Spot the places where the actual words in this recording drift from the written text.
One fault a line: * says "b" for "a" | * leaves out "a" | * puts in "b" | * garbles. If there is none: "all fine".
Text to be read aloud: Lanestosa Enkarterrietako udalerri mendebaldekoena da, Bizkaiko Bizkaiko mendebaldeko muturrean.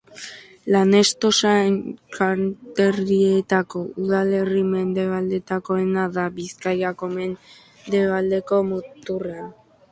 * leaves out "Bizkaiko"